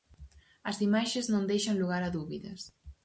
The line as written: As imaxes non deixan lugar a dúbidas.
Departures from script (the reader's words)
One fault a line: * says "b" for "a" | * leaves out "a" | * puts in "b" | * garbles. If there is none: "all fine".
all fine